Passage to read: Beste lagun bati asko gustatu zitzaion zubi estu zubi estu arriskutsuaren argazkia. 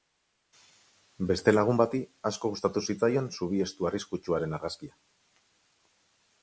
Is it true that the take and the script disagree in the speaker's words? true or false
true